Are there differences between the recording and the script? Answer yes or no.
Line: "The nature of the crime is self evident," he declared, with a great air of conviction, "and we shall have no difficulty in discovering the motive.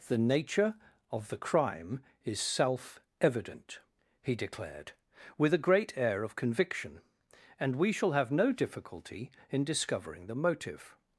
no